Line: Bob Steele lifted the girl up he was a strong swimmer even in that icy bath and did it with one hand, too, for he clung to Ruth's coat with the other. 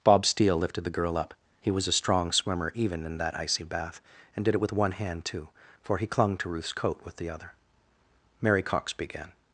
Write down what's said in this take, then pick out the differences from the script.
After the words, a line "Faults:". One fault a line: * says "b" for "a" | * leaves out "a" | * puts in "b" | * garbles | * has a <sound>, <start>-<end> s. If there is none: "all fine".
Bob Steele lifted the girl up he was a strong swimmer even in that icy bath and did it with one hand, too, for he clung to Ruth's coat with the other. Mary Cox began
Faults:
* puts in "Mary Cox began"